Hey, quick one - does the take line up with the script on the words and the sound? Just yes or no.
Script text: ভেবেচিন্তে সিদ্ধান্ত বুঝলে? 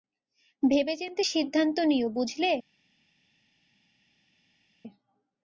no